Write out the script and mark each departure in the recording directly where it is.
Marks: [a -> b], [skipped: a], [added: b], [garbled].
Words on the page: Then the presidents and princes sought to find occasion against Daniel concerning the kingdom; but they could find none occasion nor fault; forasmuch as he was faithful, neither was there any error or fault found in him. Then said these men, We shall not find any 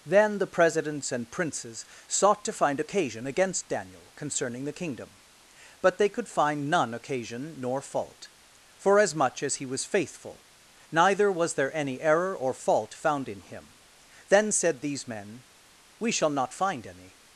Then the presidents and princes sought to find occasion against Daniel concerning the kingdom; but they could find none occasion nor fault; forasmuch as he was faithful, neither was there any error or fault found in him. Then said these men, We shall not find any